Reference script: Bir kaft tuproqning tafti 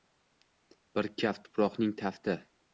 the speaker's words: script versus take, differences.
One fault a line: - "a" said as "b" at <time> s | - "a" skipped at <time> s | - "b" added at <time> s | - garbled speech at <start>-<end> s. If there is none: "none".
none